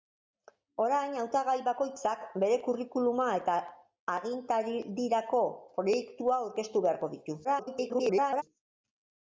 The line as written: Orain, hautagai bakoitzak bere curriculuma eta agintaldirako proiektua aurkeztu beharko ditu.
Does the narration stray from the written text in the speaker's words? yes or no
yes